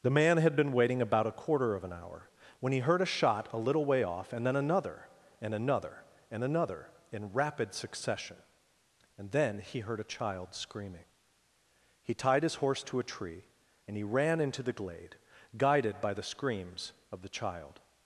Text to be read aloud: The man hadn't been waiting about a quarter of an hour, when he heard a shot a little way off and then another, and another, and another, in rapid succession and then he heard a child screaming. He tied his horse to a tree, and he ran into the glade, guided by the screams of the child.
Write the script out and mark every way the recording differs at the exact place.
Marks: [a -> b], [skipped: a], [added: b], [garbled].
The man [hadn't -> had] been waiting about a quarter of an hour, when he heard a shot a little way off and then another, and another, and another, in rapid succession and then he heard a child screaming. He tied his horse to a tree, and he ran into the glade, guided by the screams of the child.